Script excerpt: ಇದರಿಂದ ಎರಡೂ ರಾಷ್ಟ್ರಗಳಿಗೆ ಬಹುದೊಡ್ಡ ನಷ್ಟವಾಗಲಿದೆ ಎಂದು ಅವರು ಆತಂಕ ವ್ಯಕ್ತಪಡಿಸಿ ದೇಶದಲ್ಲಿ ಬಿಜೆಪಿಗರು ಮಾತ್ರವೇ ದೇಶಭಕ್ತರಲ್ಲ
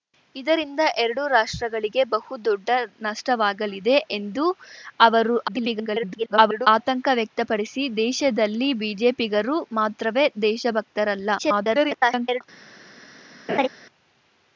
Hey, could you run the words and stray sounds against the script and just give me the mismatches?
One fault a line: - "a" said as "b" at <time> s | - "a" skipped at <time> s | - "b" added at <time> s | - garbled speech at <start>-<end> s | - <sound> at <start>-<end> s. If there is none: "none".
- garbled speech at 5.5-6.7 s
- garbled speech at 11.4-12.4 s
- laugh at 13.5-13.7 s